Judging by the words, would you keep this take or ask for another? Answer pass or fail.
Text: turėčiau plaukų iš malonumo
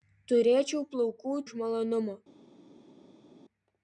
pass